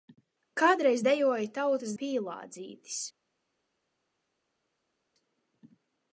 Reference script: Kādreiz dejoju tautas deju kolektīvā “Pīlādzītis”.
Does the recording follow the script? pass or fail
fail